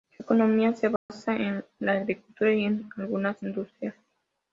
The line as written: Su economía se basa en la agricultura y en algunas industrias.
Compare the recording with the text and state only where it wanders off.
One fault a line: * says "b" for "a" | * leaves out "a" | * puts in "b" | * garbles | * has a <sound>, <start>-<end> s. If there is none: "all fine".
* has a dropout, 1.0-1.1 s